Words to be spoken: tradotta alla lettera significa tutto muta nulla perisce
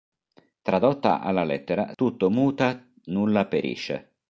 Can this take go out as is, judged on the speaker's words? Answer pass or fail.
fail